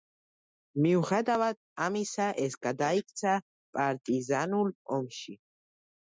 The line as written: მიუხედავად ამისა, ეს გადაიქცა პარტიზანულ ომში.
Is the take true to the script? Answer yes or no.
yes